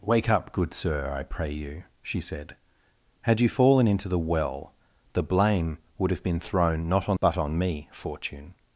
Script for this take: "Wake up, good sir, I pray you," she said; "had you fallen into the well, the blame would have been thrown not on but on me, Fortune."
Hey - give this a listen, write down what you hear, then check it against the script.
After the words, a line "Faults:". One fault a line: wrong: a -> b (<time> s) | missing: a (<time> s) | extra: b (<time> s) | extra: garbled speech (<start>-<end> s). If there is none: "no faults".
"Wake up, good sir, I pray you," she said; "had you fallen into the well, the blame would have been thrown not on but on me, Fortune."
Faults:
no faults